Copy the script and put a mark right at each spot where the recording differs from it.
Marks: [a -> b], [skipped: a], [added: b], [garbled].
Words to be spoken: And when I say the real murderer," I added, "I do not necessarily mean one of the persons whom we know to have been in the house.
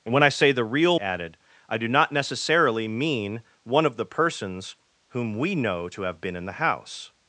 And when I say the real [skipped: murderer," I] added, "I do not necessarily mean one of the persons whom we know to have been in the house.